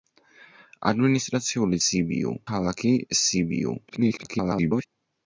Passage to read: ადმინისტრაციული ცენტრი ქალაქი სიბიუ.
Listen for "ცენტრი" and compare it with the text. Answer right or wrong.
wrong